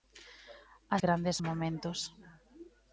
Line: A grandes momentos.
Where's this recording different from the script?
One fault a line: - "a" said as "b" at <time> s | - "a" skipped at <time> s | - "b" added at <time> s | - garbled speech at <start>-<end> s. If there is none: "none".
none